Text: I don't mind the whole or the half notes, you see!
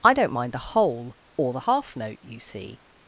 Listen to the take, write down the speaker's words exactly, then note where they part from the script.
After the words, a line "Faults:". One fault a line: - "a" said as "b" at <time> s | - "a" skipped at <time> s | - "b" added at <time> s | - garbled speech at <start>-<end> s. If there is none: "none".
I don't mind the whole or the half note, you see!
Faults:
- "notes" said as "note" at 2.0 s